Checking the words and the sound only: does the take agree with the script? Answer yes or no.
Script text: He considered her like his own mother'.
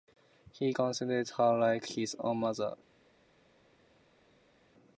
yes